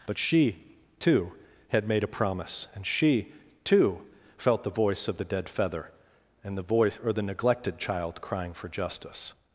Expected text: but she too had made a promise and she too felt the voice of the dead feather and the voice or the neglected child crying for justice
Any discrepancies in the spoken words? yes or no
no